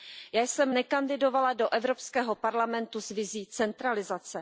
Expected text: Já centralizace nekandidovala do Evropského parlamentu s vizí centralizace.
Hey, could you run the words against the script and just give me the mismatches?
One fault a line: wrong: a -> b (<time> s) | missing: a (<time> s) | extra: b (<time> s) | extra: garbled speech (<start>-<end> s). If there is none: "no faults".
wrong: centralizace -> jsem (0.4 s)